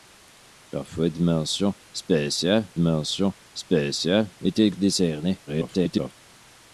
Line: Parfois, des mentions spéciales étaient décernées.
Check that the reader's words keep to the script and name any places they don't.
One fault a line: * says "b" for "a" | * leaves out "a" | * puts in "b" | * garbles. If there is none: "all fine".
* puts in "mentions spéciales"
* garbles